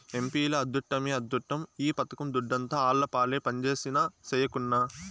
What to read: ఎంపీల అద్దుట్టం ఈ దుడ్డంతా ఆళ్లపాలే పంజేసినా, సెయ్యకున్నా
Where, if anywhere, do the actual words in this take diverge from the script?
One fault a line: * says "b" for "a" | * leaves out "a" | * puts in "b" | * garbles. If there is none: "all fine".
* puts in "అద్దుట్టమే"
* puts in "పథకం"